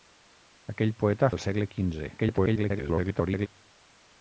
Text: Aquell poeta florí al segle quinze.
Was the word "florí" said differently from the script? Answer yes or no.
yes